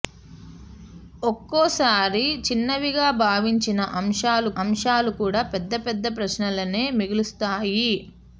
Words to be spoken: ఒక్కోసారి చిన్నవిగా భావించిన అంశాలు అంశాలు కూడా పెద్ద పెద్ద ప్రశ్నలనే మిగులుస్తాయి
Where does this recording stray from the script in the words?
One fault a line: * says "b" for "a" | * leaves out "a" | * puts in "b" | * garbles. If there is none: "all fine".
all fine